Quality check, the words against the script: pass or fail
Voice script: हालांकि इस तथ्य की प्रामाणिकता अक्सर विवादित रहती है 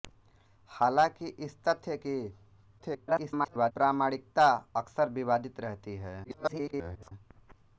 fail